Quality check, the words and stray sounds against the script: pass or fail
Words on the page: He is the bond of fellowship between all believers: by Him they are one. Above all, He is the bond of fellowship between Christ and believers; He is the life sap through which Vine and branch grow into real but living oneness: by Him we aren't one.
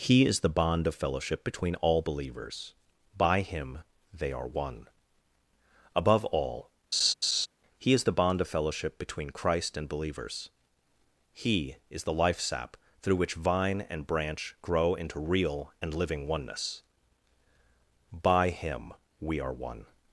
fail